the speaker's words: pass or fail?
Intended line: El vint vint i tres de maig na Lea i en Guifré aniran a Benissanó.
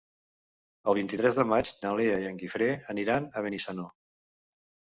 fail